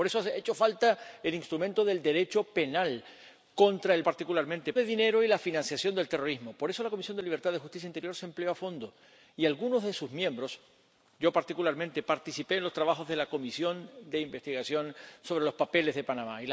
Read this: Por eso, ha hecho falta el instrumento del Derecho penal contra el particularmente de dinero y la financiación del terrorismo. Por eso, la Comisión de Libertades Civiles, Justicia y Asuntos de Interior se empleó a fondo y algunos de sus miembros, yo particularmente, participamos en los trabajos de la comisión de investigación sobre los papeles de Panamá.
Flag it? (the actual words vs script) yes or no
no